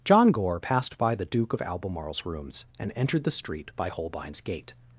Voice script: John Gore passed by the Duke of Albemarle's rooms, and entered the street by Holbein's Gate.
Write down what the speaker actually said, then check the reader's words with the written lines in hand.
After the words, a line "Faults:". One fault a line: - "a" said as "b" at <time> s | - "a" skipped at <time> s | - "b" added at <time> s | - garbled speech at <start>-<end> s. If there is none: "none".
John Gore passed by the Duke of Albemarle's rooms, and entered the street by Holbein's Gate.
Faults:
none